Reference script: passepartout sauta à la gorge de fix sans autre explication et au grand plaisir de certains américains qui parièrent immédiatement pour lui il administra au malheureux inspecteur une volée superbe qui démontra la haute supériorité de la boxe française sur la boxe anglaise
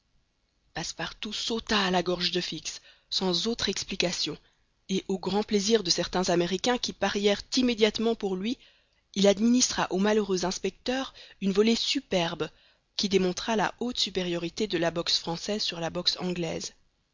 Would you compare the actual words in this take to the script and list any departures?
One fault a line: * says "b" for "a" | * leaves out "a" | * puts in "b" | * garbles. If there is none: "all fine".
all fine